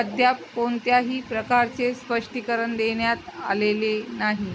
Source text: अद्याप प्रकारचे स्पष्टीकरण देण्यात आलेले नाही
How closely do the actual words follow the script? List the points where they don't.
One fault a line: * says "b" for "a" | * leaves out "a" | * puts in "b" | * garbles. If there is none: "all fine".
* puts in "कोणत्याही"